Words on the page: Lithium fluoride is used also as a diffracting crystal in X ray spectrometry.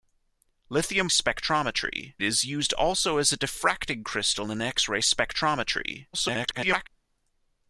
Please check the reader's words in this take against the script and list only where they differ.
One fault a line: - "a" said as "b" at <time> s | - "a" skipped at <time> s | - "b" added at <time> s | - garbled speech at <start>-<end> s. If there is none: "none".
- "fluoride" said as "spectrometry" at 1.1 s
- garbled speech at 6.1-6.9 s